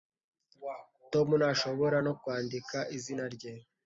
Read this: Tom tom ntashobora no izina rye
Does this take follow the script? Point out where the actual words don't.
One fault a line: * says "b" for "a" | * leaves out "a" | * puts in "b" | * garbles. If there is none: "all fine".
* leaves out "tom"
* puts in "kwandika"